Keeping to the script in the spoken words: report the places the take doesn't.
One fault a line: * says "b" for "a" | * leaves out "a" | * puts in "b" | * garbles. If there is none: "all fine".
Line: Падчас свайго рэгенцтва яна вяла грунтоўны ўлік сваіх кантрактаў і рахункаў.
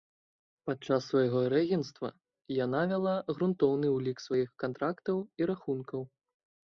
all fine